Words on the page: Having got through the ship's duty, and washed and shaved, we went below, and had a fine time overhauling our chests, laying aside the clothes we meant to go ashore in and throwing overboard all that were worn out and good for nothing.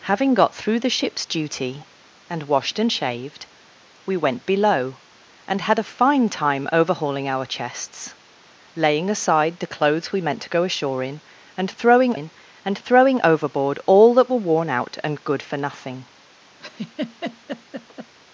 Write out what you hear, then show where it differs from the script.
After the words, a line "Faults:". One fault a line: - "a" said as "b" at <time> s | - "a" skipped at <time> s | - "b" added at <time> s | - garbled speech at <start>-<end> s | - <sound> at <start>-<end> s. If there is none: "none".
Having got through the ship's duty, and washed and shaved, we went below, and had a fine time overhauling our chests, laying aside the clothes we meant to go ashore in and throwing in and throwing overboard all that were worn out and good for nothing.
Faults:
- "in and throwing" added at 12.1 s
- laugh at 16.6-18.1 s